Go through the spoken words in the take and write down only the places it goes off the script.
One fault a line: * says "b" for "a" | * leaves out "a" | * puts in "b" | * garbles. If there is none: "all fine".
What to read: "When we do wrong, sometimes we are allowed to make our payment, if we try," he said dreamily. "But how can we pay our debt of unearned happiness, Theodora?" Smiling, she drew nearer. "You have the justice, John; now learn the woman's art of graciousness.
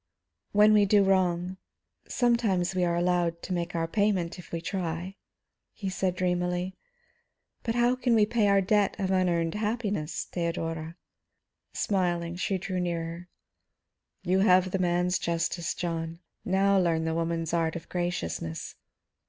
* puts in "man's"